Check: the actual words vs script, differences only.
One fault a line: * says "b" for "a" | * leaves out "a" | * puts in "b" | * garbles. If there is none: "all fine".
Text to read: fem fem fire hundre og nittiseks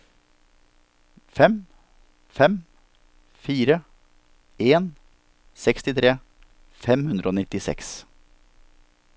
* puts in "en sekstitre fem"